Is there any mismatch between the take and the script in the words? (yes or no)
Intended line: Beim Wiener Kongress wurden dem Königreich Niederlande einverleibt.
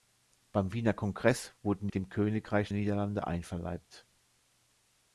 no